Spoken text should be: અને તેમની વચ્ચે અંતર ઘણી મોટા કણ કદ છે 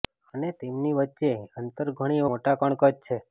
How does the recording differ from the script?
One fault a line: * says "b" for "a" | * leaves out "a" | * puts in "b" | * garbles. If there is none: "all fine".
all fine